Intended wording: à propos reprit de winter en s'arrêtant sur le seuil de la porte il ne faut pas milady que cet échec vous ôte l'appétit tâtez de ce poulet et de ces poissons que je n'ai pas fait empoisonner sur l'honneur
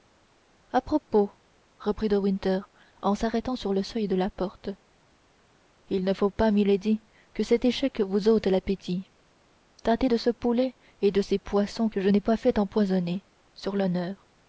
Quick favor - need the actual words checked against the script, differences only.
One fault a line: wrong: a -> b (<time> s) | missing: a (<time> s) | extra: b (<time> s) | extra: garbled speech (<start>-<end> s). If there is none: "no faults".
no faults